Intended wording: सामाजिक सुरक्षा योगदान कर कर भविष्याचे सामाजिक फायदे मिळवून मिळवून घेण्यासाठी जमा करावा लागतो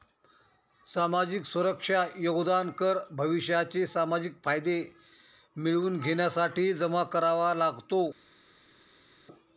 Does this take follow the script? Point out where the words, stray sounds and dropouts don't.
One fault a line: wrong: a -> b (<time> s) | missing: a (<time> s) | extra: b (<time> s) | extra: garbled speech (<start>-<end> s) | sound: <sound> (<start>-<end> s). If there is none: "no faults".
missing: कर (3.0 s)
missing: मिळवून (6.0 s)